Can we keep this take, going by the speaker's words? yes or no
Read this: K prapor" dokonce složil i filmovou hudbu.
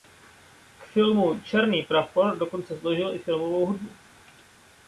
no